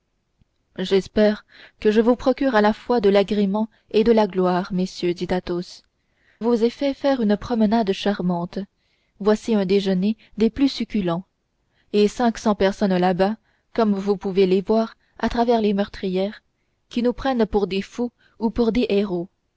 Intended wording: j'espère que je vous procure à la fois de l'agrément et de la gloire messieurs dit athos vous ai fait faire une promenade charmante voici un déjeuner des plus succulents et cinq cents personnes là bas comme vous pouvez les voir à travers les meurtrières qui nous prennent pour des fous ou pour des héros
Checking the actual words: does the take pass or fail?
pass